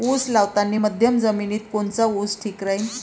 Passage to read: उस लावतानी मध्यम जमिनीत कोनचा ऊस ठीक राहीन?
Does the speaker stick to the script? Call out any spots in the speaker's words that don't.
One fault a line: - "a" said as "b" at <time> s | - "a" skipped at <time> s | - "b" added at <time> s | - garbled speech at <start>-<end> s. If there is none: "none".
none